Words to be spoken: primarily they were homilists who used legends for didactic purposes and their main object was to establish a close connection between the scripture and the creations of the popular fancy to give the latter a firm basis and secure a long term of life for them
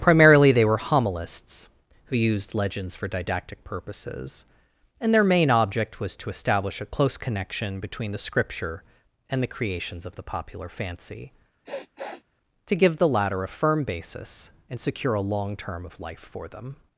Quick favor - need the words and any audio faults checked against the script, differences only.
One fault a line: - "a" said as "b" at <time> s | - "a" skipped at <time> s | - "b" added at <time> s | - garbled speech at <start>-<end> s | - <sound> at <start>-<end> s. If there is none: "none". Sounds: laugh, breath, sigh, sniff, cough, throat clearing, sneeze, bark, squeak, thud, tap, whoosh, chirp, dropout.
- sniff at 11.7-12.2 s